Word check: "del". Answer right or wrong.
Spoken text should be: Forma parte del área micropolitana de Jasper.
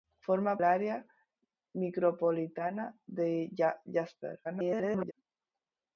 wrong